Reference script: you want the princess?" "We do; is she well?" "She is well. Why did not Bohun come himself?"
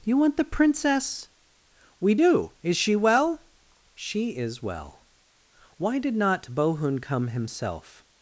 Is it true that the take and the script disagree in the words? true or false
false